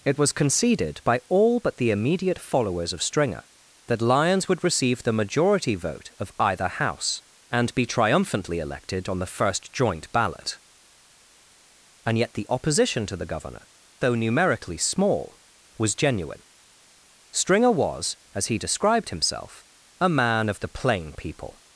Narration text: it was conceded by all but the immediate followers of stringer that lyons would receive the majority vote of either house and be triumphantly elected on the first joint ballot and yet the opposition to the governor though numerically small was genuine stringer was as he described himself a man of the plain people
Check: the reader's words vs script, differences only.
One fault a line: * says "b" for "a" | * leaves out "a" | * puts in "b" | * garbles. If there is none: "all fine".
all fine